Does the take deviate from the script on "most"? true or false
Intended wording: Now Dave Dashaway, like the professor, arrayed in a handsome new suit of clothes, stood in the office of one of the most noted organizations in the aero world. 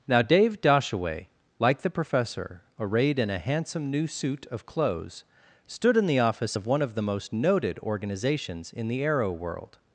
false